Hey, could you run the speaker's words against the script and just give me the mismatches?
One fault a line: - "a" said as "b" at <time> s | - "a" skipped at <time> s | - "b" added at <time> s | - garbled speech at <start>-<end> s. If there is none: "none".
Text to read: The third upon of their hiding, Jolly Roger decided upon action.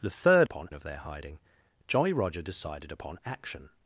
none